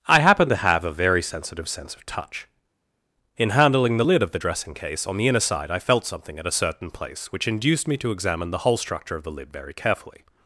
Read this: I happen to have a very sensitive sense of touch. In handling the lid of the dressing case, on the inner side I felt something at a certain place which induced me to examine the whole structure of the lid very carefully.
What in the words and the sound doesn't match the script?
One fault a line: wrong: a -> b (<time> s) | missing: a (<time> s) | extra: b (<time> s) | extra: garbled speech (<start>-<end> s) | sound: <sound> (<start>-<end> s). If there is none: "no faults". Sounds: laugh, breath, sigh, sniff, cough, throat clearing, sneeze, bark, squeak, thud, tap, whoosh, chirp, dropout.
no faults